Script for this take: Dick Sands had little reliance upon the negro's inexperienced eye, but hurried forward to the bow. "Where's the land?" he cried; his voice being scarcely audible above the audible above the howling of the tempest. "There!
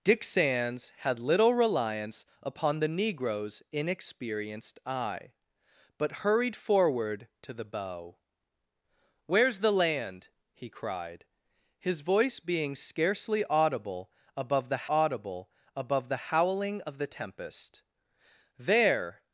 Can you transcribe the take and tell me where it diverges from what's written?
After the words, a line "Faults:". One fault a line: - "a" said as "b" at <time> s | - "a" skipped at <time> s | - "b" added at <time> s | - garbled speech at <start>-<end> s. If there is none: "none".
Dick Sands had little reliance upon the negro's inexperienced eye, but hurried forward to the bow. "Where's the land?" he cried; his voice being scarcely audible above the audible above the howling of the tempest. "There!
Faults:
none